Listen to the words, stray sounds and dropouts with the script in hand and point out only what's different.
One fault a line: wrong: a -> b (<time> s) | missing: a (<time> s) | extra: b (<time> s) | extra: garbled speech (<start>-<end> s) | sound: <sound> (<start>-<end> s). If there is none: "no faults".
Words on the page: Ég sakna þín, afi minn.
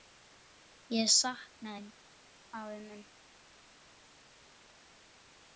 no faults